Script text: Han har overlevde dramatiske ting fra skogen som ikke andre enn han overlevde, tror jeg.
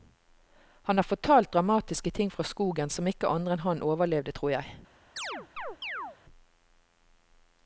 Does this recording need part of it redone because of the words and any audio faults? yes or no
yes